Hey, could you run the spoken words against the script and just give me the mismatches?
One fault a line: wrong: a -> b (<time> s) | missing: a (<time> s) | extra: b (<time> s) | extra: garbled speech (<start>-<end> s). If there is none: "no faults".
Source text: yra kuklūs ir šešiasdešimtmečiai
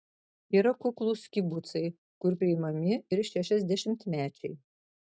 extra: kibucai kur priimami (1.4 s)